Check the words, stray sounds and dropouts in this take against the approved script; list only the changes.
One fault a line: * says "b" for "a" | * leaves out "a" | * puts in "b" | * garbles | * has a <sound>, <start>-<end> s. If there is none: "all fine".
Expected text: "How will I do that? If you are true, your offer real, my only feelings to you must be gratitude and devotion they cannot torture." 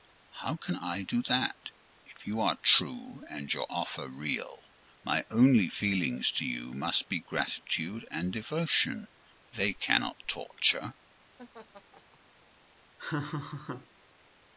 * says "can" for "will"
* puts in "and"
* has a laugh, 11.4-12.2 s
* has a laugh, 13.0-13.9 s